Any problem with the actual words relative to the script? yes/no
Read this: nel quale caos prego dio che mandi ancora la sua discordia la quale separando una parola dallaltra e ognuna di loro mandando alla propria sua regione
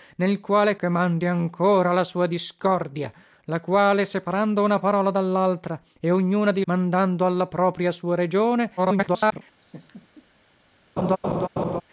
yes